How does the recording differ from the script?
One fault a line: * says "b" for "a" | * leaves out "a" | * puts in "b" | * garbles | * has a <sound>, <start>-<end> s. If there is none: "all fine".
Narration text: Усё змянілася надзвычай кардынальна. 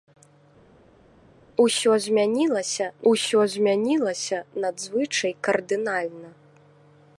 * puts in "усё змянілася"